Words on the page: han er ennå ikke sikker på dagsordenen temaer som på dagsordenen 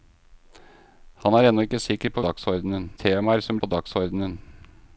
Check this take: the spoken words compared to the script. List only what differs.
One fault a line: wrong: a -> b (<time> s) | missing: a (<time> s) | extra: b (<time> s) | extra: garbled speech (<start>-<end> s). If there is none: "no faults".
no faults